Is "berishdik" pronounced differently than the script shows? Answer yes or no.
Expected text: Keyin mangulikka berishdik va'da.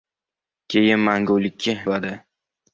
yes